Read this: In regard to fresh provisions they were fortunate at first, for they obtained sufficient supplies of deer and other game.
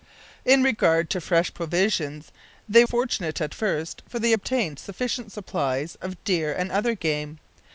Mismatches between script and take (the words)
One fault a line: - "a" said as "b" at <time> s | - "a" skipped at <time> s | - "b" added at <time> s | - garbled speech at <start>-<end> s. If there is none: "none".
- "were" skipped at 2.8 s